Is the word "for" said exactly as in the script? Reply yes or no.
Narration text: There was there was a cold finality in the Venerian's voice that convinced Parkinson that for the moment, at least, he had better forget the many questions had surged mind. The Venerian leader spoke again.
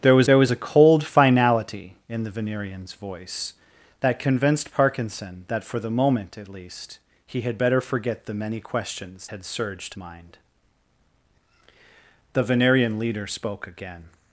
yes